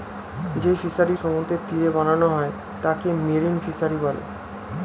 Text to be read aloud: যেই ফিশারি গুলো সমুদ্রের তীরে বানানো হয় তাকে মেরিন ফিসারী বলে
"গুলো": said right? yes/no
no